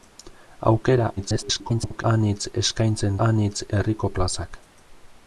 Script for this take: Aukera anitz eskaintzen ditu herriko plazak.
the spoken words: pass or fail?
fail